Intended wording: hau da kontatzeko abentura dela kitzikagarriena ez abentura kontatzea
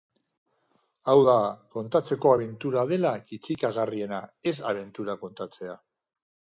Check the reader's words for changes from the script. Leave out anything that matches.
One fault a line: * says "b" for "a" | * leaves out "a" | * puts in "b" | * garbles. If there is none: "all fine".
all fine